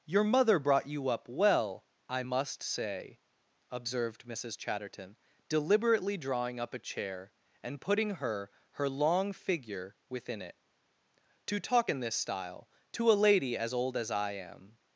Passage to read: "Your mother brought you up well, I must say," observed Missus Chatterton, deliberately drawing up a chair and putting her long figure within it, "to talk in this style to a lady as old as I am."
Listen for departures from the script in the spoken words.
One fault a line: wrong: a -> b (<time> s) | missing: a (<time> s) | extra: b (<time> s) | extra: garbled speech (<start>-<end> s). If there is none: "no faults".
extra: her (8.7 s)